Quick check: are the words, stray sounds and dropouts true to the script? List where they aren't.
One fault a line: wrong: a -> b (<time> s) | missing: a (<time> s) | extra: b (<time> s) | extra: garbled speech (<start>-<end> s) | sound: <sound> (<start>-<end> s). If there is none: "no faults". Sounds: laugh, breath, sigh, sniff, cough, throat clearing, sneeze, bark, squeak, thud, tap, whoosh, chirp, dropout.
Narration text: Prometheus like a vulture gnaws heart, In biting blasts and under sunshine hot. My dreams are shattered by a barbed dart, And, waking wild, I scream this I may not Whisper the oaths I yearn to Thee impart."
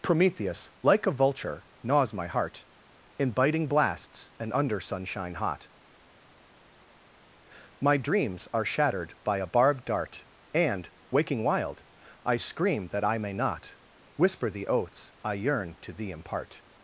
extra: my (2.1 s)
wrong: this -> that (12.9 s)